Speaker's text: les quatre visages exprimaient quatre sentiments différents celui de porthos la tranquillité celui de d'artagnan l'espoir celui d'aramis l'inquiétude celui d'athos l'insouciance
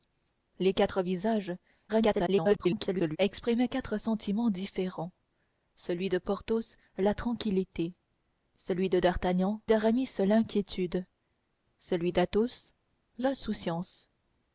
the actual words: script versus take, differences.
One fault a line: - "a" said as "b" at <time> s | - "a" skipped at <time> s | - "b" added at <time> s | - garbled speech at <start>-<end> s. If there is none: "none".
- garbled speech at 1.9-3.2 s
- "l'espoir celui" skipped at 9.6 s